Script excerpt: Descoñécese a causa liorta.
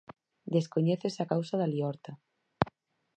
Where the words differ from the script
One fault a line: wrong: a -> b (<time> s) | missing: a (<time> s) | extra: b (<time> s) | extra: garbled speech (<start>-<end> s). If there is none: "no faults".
extra: da (1.6 s)